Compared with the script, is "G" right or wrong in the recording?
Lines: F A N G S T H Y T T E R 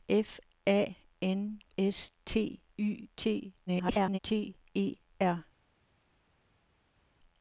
wrong